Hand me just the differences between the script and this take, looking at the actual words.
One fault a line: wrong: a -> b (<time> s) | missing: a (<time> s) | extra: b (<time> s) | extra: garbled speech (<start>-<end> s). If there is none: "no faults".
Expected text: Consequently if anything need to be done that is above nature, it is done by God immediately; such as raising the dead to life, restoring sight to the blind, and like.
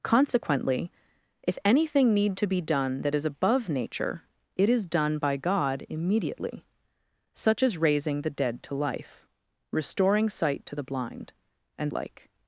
no faults